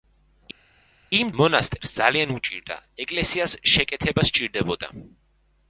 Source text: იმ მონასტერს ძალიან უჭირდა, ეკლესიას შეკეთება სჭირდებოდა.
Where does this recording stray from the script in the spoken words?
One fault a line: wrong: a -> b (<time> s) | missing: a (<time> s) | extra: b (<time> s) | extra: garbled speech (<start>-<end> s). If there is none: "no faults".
no faults